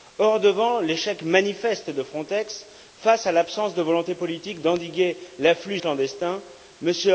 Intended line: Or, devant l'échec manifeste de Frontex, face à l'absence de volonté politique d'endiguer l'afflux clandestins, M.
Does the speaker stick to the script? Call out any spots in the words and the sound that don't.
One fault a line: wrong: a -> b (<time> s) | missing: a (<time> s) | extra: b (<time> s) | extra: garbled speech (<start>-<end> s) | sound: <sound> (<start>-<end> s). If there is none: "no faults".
no faults